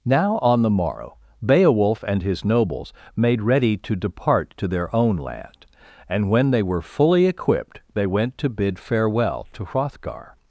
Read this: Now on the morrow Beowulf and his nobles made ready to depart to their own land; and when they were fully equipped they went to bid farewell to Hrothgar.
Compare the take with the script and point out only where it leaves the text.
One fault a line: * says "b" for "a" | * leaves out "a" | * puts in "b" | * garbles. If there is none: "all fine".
all fine